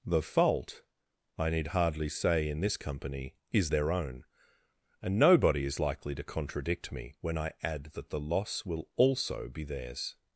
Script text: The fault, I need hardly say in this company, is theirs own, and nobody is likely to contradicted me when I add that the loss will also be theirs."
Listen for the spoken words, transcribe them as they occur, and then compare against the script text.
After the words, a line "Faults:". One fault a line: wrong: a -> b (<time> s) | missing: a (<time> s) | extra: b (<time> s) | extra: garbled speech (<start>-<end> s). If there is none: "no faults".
The fault, I need hardly say in this company, is their own, and nobody is likely to contradict me when I add that the loss will also be theirs."
Faults:
wrong: theirs -> their (3.7 s)
wrong: contradicted -> contradict (6.2 s)